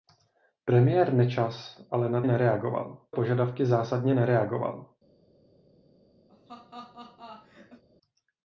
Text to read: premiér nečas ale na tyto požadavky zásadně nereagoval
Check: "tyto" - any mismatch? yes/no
yes